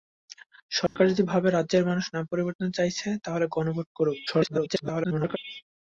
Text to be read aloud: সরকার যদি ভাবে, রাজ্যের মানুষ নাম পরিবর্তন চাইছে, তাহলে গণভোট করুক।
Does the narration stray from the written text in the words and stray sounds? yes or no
yes